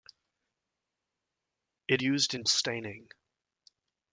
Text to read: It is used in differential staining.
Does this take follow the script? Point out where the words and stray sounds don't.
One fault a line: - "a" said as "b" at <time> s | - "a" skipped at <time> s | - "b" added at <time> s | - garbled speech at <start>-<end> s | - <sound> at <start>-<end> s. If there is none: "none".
- "is" skipped at 2.0 s
- "differential" skipped at 2.4 s